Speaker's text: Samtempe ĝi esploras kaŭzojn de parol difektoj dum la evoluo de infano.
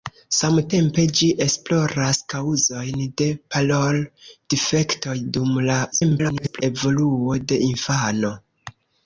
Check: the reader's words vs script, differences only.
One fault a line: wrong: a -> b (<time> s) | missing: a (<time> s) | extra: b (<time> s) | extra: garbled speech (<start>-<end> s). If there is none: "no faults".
extra: garbled speech (5.9-6.6 s)